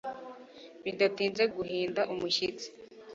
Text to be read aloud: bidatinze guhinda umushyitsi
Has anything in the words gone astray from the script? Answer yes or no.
no